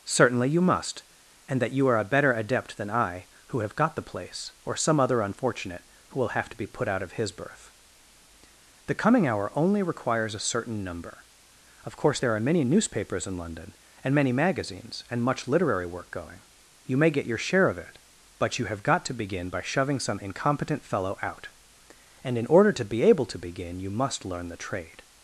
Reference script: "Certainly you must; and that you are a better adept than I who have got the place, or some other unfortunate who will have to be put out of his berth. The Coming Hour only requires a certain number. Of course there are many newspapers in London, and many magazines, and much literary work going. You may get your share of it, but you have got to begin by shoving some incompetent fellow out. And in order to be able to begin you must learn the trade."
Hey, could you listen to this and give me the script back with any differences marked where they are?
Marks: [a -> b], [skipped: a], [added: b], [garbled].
"Certainly you must; and that you are a better adept than I who have got the place, or some other unfortunate who will have to be put out of his berth. The Coming Hour only requires a certain number. Of course there are many newspapers in London, and many magazines, and much literary work going. You may get your share of it, but you have got to begin by shoving some incompetent fellow out. And in order to be able to begin you must learn the trade."